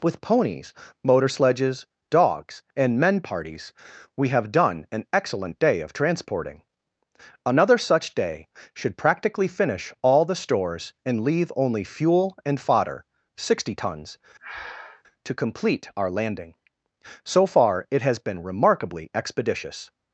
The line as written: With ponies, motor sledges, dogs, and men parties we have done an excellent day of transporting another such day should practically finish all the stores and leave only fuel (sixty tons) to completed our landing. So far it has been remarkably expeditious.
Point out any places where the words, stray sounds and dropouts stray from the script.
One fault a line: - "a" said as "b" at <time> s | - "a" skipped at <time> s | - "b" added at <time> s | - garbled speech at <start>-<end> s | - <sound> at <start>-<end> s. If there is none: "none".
- "and fodder" added at 12.5 s
- breath at 14.4-15.0 s
- "completed" said as "complete" at 15.3 s